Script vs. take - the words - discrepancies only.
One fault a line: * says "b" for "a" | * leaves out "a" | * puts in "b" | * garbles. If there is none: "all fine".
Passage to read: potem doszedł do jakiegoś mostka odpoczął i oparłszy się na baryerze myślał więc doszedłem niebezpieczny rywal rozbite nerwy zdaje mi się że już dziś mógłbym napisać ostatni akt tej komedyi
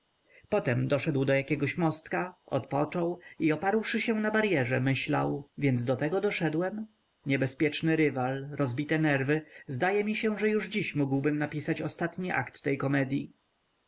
* puts in "do tego"